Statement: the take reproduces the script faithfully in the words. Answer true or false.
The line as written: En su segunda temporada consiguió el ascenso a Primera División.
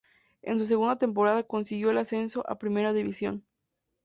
true